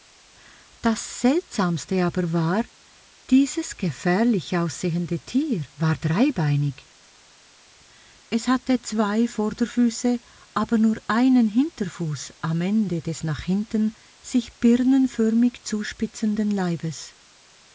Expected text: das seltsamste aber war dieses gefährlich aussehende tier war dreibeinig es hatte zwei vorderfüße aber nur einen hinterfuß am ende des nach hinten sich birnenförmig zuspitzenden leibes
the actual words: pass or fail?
pass